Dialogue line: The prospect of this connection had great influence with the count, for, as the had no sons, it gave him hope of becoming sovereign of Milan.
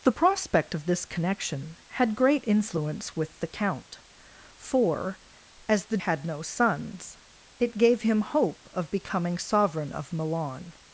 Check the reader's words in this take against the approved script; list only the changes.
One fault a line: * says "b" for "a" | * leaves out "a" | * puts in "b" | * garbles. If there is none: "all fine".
all fine